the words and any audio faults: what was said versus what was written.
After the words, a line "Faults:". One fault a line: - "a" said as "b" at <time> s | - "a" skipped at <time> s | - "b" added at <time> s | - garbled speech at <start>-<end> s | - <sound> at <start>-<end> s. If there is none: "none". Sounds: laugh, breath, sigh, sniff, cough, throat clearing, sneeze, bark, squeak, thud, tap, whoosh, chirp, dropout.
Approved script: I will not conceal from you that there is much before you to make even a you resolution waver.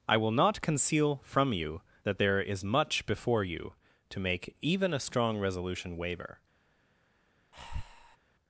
I will not conceal from you that there is much before you to make even a strong resolution waver.
Faults:
- "you" said as "strong" at 5.0 s
- breath at 7.5-8.2 s